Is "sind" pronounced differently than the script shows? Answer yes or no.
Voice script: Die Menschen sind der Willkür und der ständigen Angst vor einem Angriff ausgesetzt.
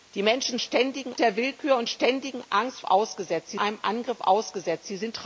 yes